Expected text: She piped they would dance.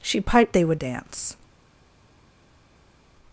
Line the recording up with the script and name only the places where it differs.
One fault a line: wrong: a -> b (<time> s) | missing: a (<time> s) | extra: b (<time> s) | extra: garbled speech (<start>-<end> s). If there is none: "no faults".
no faults